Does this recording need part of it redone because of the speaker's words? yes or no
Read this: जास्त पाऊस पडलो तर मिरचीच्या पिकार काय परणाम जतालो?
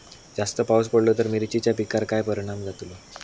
no